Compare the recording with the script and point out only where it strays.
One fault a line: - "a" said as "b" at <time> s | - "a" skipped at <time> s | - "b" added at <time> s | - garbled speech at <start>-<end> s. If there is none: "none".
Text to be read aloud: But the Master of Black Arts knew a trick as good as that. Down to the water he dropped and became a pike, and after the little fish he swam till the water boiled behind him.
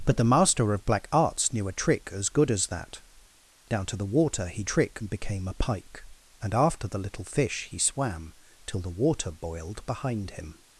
- "dropped" said as "trick" at 4.6 s